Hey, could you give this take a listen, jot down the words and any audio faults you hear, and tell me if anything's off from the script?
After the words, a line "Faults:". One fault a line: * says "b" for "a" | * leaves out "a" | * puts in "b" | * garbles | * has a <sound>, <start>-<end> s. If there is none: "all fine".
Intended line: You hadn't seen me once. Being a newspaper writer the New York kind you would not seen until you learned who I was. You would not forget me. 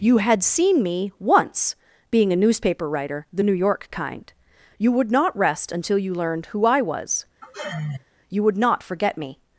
You had seen me once. Being a newspaper writer the New York kind you would not rest until you learned who I was. You would not forget me.
Faults:
* says "had" for "hadn't"
* says "rest" for "seen"
* has a sigh, 7.4-8.0 s